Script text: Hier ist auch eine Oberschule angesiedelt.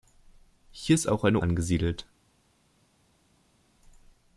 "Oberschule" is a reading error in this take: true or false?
true